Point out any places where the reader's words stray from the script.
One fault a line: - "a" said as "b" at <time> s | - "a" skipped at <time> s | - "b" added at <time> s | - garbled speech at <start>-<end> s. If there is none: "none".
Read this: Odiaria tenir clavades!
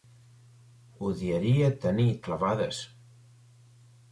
none